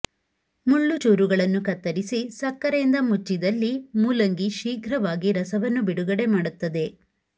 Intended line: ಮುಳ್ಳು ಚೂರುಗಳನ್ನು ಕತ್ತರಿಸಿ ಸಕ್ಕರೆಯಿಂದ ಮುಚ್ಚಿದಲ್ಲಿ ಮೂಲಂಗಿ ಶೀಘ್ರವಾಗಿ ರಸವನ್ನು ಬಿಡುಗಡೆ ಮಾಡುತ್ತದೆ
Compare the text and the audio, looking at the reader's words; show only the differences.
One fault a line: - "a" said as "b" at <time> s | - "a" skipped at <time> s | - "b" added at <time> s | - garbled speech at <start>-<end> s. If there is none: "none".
none